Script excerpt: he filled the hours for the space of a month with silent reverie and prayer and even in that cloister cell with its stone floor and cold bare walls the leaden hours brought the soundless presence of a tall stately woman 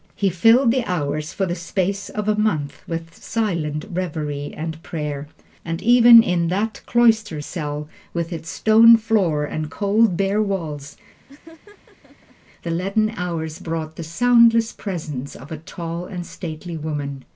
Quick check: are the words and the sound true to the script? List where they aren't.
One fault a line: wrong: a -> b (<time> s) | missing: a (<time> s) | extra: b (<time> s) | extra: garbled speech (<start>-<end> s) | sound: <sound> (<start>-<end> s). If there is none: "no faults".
sound: laugh (11.3-12.4 s)
extra: and (16.1 s)